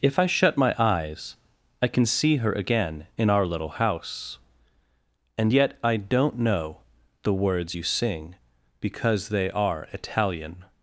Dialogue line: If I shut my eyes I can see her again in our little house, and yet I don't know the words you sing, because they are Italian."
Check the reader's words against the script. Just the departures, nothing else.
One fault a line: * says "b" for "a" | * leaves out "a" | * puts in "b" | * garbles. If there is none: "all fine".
all fine